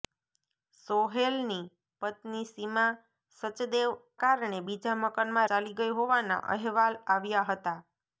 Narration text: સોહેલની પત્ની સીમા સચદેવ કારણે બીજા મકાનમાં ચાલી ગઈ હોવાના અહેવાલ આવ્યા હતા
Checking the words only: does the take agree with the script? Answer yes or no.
yes